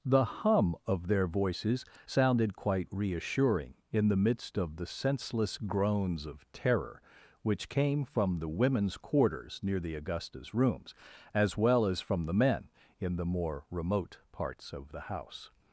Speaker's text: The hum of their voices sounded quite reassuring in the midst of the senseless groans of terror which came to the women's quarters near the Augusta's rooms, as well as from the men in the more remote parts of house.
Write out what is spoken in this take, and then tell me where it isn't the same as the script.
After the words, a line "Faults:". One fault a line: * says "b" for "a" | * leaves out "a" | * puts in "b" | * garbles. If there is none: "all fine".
The hum of their voices sounded quite reassuring in the midst of the senseless groans of terror which came from the women's quarters near the Augusta's rooms, as well as from the men in the more remote parts of the house.
Faults:
* says "from" for "to"
* puts in "the"